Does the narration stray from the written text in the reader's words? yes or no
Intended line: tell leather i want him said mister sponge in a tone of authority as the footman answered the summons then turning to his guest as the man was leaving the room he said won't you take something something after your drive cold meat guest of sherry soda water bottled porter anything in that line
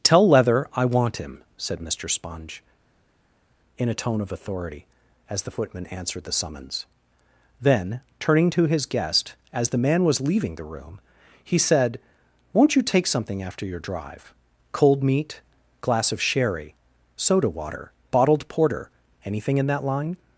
yes